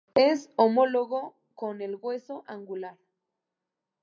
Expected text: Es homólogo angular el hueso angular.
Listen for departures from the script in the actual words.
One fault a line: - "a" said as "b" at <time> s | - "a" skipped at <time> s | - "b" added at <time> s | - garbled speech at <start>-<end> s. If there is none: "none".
- "angular" said as "con" at 1.6 s